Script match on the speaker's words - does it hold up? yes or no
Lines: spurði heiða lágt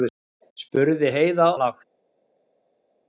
yes